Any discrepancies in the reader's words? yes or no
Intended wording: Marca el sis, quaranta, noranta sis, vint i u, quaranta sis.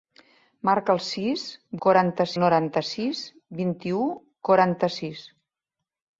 no